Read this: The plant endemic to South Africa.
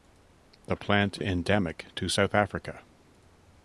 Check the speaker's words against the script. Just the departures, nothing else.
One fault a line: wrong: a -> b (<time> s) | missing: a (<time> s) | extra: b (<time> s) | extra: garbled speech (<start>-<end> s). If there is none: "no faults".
no faults